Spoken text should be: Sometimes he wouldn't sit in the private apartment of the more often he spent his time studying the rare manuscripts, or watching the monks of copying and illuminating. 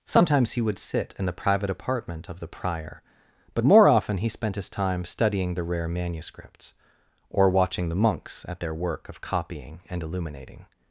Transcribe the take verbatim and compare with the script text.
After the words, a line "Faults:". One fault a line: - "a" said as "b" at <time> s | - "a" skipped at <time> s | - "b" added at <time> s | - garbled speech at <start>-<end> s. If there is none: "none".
Sometimes he would sit in the private apartment of the prior, but more often he spent his time studying the rare manuscripts, or watching the monks at their work of copying and illuminating.
Faults:
- "wouldn't" said as "would" at 0.6 s
- "prior but" added at 2.5 s
- "at their work" added at 8.5 s